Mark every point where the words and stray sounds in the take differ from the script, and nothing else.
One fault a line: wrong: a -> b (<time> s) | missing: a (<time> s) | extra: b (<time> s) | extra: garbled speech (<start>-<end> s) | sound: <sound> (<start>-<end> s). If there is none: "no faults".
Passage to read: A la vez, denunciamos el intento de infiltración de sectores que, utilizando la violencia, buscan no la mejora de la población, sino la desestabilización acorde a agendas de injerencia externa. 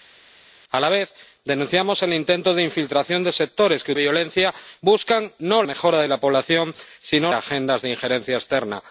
missing: utilizando la (3.9 s)
missing: la (5.6 s)
missing: la desestabilización acorde (7.3 s)